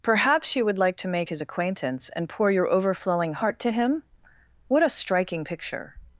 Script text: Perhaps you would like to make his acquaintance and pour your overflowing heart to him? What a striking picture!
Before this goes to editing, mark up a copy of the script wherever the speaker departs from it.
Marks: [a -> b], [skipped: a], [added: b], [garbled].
Perhaps you would like to make his acquaintance and pour your overflowing heart to him? What a striking picture!